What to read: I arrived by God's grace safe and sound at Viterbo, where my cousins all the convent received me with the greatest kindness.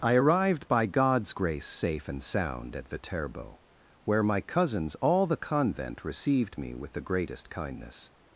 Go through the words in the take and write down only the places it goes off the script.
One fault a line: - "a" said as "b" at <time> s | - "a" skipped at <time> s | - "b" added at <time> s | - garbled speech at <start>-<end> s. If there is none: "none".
none